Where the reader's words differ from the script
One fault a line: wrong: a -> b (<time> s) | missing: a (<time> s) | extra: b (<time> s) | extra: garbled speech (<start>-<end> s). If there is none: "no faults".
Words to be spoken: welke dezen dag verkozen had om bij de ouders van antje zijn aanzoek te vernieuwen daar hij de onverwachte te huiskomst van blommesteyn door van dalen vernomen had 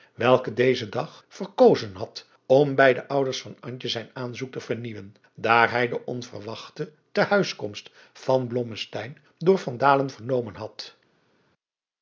no faults